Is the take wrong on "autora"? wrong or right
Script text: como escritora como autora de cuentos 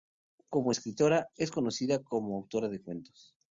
right